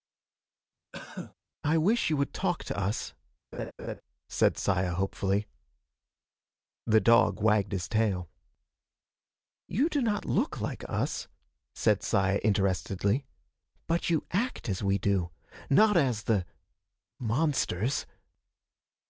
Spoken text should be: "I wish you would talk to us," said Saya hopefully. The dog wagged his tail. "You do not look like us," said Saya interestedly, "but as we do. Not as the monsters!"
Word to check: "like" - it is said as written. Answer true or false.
true